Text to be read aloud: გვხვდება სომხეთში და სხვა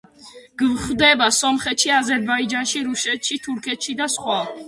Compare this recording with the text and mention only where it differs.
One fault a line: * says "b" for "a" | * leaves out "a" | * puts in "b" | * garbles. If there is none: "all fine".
* puts in "აზერბაიჯანში რუსეთში თურქეთში"